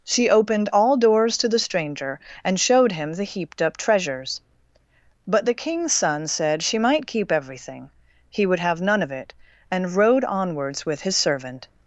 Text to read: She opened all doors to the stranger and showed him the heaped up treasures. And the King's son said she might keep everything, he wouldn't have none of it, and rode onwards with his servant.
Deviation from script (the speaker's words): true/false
true